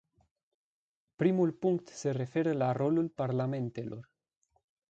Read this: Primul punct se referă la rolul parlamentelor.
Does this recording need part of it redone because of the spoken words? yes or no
no